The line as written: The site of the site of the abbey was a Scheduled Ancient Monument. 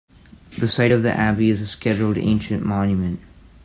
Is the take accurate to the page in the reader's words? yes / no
no